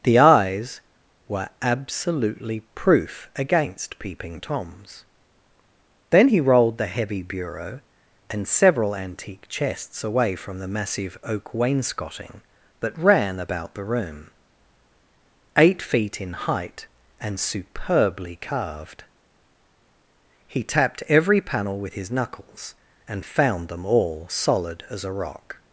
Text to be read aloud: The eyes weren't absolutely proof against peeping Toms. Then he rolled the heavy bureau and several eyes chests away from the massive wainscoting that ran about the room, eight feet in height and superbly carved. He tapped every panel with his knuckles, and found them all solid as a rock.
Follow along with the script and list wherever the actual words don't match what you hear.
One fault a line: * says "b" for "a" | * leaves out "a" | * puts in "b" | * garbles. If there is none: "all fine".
* says "were" for "weren't"
* says "antique" for "eyes"
* puts in "oak"